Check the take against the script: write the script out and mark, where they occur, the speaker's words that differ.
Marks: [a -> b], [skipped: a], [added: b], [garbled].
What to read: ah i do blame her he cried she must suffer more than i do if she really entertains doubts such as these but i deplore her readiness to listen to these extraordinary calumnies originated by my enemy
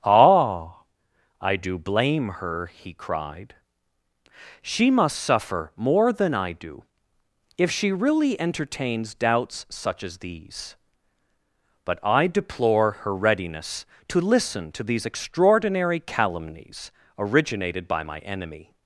ah i do blame her he cried she must suffer more than i do if she really entertains doubts such as these but i deplore her readiness to listen to these extraordinary calumnies originated by my enemy